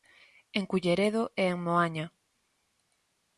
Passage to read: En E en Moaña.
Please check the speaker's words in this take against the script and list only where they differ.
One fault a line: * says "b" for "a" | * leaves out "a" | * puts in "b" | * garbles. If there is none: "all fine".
* puts in "Culleredo"